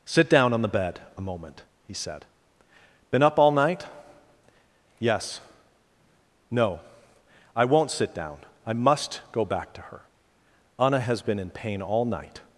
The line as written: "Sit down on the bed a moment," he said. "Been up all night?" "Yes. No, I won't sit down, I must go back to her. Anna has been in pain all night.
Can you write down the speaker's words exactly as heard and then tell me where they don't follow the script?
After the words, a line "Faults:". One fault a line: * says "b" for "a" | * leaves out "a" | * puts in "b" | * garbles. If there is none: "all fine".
"Sit down on the bed a moment," he said. "Been up all night?" "Yes. No, I won't sit down, I must go back to her. Anna has been in pain all night.
Faults:
all fine